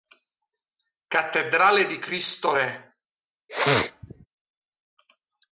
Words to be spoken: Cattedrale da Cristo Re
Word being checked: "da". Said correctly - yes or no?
no